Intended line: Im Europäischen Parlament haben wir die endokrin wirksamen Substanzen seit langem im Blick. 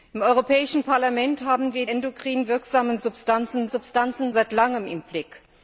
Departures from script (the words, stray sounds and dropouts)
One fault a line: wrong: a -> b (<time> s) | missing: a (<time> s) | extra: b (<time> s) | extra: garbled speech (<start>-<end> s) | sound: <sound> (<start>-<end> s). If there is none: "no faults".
missing: die (1.9 s)
extra: Substanzen (3.7 s)